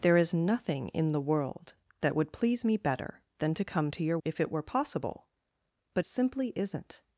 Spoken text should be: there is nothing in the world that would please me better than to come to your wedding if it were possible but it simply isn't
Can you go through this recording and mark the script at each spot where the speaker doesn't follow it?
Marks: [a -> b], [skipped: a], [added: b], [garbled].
there is nothing in the world that would please me better than to come to your [skipped: wedding] if it were possible but [skipped: it] simply isn't